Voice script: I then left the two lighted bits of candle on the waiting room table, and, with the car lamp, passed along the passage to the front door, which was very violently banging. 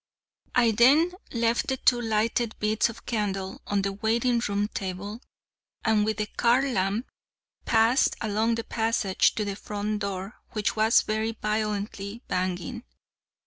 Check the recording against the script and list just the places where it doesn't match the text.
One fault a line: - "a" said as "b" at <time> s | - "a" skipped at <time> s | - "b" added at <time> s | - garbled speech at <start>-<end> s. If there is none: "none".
none